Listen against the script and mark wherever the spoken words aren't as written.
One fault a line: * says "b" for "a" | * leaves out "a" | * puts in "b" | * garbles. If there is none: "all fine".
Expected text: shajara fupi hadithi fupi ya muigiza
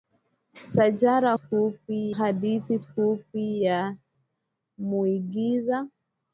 all fine